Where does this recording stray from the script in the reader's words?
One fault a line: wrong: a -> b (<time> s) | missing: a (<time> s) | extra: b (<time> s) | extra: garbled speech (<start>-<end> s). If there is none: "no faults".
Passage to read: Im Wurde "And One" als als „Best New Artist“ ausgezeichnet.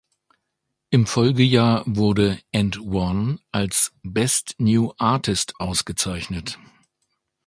extra: Folgejahr (1.1 s)
missing: als (3.9 s)